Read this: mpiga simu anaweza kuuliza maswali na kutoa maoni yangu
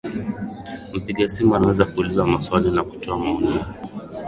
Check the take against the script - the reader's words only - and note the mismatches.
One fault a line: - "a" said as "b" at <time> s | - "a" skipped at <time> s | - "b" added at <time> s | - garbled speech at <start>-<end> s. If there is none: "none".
- "yangu" said as "yake" at 3.5 s